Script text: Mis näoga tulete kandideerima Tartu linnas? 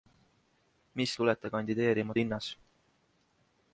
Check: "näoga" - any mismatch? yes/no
yes